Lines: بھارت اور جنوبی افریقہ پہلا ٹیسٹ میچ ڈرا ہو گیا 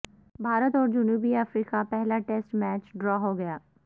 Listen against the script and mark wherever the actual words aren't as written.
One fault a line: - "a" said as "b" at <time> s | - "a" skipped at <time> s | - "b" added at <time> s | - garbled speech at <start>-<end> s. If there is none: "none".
none